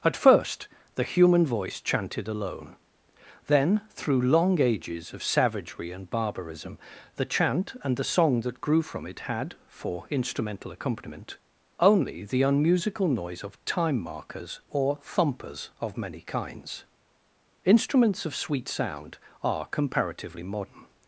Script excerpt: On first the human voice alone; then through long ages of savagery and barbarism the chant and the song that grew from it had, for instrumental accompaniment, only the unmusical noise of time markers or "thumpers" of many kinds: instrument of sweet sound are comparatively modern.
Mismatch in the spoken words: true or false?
true